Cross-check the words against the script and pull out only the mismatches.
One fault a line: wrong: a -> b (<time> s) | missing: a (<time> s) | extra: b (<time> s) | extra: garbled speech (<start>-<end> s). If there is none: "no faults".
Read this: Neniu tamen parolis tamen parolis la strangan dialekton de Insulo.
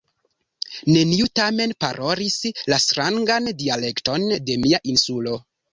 missing: tamen parolis (2.4 s)
extra: mia (4.7 s)